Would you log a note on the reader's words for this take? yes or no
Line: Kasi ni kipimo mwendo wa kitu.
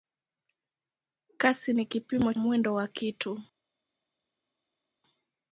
no